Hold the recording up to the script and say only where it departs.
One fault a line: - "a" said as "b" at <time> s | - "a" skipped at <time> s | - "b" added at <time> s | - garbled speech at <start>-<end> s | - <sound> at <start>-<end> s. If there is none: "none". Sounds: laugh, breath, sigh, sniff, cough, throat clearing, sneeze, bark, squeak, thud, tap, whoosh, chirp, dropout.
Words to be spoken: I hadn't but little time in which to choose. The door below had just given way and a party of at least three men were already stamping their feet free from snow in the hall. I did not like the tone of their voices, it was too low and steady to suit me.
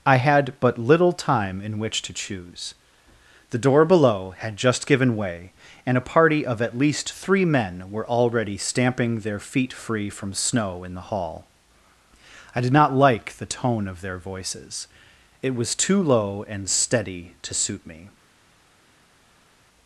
- "hadn't" said as "had" at 0.1 s